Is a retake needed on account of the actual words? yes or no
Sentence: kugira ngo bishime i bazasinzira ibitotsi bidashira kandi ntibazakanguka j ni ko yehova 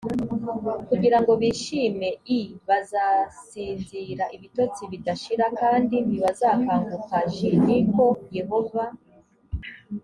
no